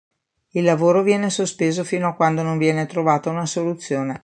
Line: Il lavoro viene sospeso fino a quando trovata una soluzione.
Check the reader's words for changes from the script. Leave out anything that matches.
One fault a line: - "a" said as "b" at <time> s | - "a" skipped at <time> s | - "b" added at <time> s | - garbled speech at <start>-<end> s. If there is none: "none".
- "non viene" added at 2.4 s